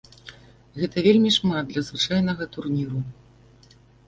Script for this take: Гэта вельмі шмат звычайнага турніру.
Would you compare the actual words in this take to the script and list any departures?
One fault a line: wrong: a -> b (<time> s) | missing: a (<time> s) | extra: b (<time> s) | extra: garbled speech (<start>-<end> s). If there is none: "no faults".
extra: для (1.7 s)